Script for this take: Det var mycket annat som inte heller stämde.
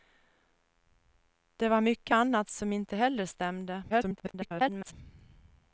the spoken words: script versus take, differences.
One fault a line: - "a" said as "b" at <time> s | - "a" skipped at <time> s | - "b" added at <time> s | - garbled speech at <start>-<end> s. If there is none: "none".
- garbled speech at 3.9-4.9 s